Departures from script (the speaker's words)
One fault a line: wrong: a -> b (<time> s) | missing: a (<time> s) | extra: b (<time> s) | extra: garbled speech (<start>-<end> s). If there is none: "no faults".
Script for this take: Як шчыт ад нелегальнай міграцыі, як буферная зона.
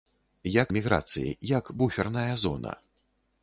missing: шчыт ад нелегальнай (0.7 s)